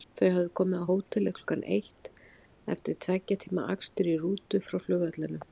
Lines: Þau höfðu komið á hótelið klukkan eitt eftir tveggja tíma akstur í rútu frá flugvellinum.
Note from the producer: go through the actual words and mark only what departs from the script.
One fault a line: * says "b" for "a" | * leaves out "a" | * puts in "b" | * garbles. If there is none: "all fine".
all fine